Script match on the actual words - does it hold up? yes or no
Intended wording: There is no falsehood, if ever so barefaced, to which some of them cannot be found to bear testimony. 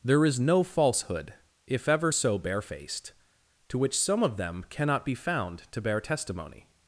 yes